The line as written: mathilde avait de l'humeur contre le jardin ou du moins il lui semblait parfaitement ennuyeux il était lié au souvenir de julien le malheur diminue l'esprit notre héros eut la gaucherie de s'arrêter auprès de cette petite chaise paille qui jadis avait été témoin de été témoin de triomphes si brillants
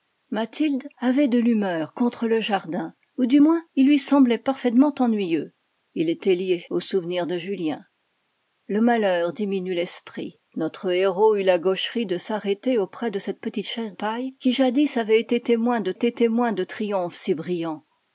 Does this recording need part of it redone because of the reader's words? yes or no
no